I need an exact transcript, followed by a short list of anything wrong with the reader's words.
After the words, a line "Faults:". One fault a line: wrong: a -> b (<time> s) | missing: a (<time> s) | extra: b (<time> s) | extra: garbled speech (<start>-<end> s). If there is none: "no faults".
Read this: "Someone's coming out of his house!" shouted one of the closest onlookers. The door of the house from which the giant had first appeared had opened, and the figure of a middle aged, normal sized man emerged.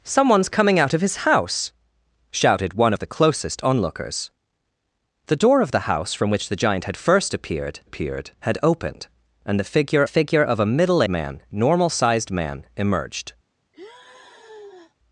"Someone's coming out of his house!" shouted one of the closest onlookers. The door of the house from which the giant had first appeared appeared had opened, and the figure figure of a middle man, normal sized man emerged.
Faults:
extra: appeared (7.8 s)
extra: figure (10.1 s)
wrong: aged -> man (11.1 s)